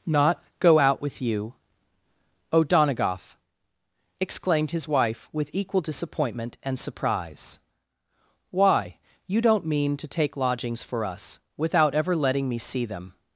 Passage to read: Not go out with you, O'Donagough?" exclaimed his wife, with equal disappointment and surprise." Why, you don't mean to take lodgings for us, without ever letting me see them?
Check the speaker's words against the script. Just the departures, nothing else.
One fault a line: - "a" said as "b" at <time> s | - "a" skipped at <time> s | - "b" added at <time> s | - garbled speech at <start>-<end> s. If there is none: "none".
none